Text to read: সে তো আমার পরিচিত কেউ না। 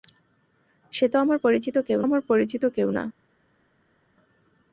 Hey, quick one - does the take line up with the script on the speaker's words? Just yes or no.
no